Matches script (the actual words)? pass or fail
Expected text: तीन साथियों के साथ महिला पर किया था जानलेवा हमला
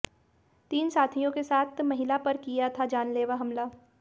pass